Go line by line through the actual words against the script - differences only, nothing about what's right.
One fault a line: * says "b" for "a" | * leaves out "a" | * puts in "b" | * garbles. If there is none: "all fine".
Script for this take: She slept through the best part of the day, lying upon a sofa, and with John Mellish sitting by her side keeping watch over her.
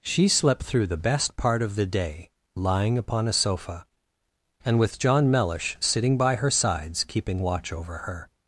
* says "sides" for "side"